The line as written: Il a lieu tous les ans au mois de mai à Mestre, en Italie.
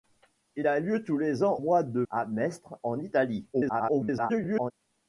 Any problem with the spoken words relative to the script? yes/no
yes